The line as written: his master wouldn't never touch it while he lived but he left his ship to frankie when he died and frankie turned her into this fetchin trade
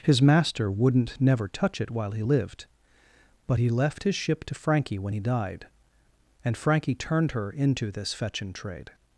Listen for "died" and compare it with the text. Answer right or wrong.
right